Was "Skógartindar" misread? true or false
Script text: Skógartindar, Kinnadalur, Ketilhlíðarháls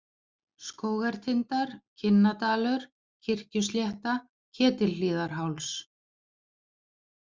false